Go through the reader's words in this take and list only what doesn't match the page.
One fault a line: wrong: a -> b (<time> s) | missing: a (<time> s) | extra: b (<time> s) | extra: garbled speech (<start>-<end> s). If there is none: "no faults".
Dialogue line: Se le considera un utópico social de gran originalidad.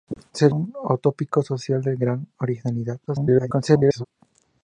missing: le considera (0.5 s)
extra: garbled speech (3.1-4.1 s)